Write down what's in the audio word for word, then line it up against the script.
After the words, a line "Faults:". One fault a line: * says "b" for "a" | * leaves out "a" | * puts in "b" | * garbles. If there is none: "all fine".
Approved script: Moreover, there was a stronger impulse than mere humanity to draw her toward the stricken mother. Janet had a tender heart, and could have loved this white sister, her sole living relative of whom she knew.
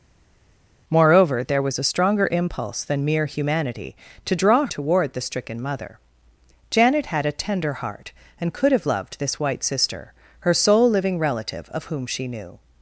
Moreover, there was a stronger impulse than mere humanity to draw toward the stricken mother. Janet had a tender heart, and could have loved this white sister, her sole living relative of whom she knew.
Faults:
* leaves out "her"